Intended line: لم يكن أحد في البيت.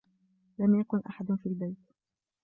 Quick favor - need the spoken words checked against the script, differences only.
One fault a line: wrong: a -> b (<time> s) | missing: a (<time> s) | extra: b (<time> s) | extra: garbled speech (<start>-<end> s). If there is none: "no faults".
no faults